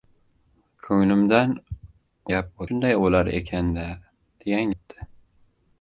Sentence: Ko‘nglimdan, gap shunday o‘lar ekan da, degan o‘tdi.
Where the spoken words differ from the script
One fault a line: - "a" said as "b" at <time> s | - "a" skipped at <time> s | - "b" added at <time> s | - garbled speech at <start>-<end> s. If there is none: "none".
none